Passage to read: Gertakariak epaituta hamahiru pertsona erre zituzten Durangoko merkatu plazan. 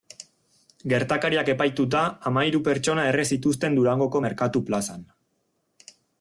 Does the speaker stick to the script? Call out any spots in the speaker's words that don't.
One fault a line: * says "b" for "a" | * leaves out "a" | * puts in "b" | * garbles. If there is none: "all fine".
all fine